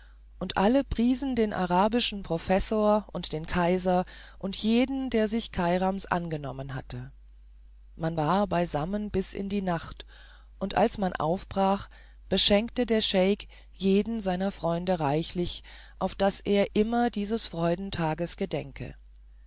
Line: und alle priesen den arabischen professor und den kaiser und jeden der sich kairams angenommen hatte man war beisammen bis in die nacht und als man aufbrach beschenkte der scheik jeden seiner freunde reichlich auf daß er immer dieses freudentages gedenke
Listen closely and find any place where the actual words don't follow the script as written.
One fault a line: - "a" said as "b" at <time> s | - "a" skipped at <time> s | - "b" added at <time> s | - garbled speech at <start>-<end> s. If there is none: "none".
none